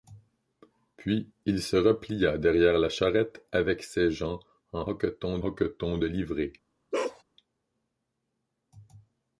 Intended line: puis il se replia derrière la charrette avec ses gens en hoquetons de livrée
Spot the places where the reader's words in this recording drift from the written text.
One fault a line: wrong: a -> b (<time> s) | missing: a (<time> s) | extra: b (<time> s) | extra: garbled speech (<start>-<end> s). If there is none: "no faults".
extra: hoquetons (5.4 s)